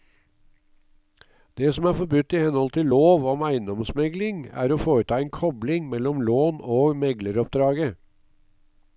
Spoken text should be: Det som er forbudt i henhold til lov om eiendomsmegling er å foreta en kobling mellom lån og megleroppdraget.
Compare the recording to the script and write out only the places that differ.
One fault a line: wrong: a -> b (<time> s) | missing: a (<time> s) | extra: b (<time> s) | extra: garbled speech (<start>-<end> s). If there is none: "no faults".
no faults